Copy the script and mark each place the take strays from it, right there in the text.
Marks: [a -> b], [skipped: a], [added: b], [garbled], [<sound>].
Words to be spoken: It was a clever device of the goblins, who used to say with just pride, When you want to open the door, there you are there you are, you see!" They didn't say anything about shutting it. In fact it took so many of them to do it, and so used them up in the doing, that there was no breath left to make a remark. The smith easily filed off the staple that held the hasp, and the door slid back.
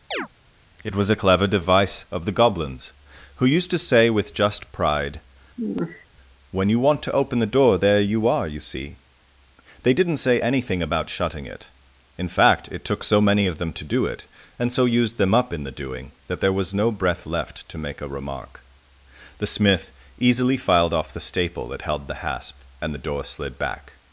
[chirp] It was a clever device of the goblins, who used to say with just pride, [sigh] When you want to open the door, there you are [skipped: there you are,] you see!" They didn't say anything about shutting it. In fact it took so many of them to do it, and so used them up in the doing, that there was no breath left to make a remark. The smith easily filed off the staple that held the hasp, and the door slid back.